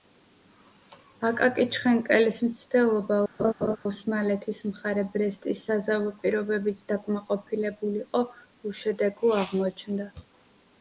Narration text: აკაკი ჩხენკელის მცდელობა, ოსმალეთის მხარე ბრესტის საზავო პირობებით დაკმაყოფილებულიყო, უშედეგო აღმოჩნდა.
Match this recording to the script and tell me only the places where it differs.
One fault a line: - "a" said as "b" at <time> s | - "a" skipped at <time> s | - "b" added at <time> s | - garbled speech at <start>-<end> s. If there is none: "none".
none